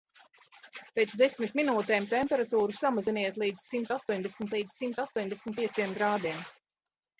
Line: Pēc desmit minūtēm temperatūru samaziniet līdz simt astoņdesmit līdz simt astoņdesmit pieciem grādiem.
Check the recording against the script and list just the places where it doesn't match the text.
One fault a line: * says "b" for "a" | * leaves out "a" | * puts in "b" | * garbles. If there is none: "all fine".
all fine